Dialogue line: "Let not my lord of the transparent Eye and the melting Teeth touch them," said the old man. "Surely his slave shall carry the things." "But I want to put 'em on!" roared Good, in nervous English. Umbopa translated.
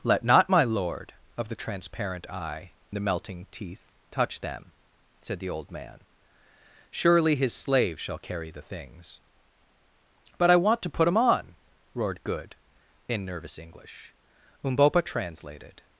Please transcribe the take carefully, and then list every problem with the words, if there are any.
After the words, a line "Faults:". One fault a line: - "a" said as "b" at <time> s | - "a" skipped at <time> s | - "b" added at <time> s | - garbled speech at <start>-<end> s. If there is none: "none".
"Let not my lord of the transparent Eye the melting Teeth touch them," said the old man. "Surely his slave shall carry the things." "But I want to put 'em on!" roared Good, in nervous English. Umbopa translated.
Faults:
- "and" skipped at 2.7 s